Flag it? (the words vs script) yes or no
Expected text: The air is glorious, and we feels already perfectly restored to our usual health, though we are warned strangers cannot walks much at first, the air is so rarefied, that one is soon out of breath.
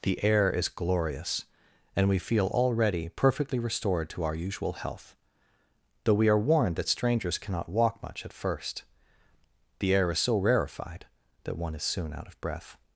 yes